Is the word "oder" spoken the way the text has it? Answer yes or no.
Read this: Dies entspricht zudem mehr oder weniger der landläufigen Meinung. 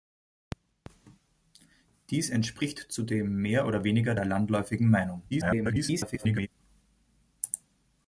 yes